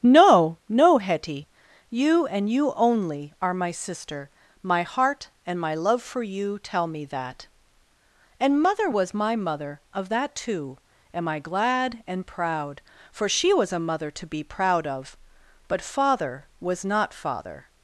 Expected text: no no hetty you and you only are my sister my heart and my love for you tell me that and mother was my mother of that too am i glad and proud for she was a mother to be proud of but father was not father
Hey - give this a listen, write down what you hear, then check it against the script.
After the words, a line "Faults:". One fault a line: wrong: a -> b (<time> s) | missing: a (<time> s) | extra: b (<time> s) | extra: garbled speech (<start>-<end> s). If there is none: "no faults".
no no hetty you and you only are my sister my heart and my love for you tell me that and mother was my mother of that too am i glad and proud for she was a mother to be proud of but father was not father
Faults:
no faults